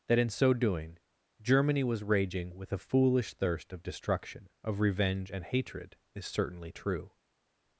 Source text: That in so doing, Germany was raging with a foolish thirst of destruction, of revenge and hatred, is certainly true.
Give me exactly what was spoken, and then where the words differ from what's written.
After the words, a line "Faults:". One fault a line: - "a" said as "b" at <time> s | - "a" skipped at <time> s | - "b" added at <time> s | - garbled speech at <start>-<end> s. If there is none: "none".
That in so doing, Germany was raging with a foolish thirst of destruction, of revenge and hatred, is certainly true.
Faults:
none